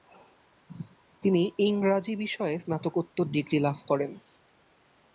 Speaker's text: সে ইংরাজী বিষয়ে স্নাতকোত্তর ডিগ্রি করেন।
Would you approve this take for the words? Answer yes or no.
no